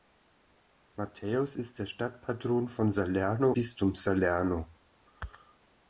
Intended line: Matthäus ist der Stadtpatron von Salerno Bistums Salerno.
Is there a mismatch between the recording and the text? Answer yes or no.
no